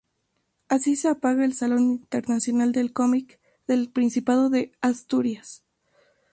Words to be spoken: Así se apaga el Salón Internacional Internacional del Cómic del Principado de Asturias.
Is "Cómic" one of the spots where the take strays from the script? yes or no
no